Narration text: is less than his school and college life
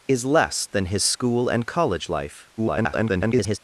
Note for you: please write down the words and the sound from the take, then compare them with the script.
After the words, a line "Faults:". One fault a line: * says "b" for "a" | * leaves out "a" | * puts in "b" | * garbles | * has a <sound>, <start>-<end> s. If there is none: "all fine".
is less than his school and college life [garbled]
Faults:
* garbles